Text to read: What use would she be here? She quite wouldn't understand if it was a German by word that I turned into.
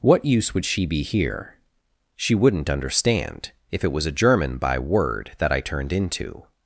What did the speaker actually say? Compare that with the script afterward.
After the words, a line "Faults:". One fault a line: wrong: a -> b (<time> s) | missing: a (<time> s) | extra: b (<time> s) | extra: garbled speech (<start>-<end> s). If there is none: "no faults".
What use would she be here? She wouldn't understand if it was a German by word that I turned into.
Faults:
missing: quite (2.3 s)